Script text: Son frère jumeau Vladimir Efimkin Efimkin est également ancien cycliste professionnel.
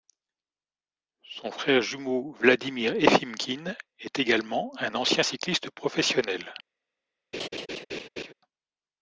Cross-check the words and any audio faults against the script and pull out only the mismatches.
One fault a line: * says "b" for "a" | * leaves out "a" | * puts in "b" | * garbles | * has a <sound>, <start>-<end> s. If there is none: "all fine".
* leaves out "Efimkin"
* puts in "un"
* has a laugh, 7.3-8.3 s